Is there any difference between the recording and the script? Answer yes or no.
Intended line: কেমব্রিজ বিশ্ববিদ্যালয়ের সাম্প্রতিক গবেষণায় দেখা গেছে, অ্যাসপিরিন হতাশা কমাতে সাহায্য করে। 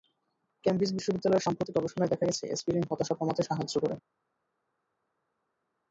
no